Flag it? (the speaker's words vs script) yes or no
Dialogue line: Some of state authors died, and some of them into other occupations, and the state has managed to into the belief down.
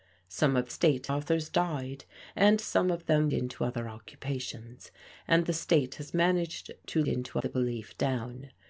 no